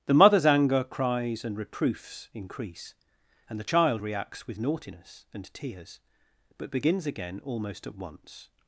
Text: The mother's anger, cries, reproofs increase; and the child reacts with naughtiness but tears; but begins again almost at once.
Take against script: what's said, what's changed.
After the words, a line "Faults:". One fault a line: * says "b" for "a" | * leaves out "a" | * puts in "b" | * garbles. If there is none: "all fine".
The mother's anger, cries, and reproofs increase; and the child reacts with naughtiness and tears; but begins again almost at once.
Faults:
* puts in "and"
* says "and" for "but"